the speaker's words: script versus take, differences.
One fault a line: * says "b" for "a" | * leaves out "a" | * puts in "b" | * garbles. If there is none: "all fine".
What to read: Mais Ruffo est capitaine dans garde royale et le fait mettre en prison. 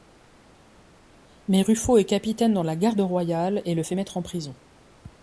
* puts in "la"